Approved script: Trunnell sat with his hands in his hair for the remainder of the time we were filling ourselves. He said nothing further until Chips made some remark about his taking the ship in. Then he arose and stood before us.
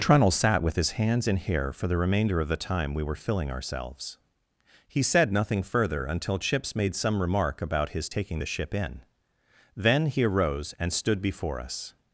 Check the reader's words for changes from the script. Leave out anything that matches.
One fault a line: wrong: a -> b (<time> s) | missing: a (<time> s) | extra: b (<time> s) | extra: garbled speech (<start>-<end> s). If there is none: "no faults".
missing: his (1.4 s)